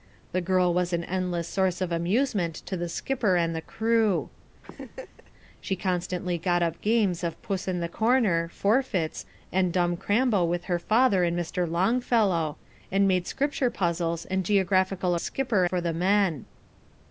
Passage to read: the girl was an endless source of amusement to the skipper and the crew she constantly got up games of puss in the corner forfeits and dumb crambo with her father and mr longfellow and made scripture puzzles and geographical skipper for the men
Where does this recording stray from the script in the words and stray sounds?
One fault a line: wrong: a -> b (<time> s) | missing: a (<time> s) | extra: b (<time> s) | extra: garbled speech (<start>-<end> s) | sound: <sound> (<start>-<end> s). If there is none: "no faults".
sound: laugh (4.6-5.3 s)